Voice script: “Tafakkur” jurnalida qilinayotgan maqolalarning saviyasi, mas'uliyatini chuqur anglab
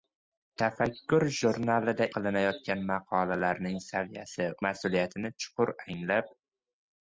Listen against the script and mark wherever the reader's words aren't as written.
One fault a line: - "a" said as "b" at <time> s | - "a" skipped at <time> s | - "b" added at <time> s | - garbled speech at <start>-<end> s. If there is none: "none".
none